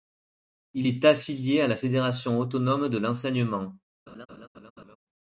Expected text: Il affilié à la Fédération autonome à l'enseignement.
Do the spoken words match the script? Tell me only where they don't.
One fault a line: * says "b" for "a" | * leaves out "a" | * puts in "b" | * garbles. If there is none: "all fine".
* puts in "est"
* says "de" for "à"